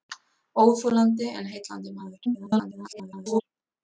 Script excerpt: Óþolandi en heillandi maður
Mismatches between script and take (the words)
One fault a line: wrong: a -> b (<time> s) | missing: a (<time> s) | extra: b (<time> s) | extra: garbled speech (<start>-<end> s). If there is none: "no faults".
extra: garbled speech (2.3-3.4 s)